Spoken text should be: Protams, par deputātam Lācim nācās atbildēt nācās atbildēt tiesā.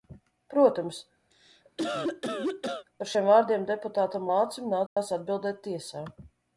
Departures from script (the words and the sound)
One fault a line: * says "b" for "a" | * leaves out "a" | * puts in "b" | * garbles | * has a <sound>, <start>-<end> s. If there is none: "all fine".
* has a cough, 1.3-2.9 s
* puts in "šiem vārdiem"
* has a dropout, 4.9-5.0 s
* leaves out "nācās atbildēt"